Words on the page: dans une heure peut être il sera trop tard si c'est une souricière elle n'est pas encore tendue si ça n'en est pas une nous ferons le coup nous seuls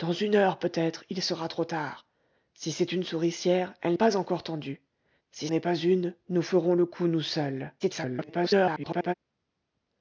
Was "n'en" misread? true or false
true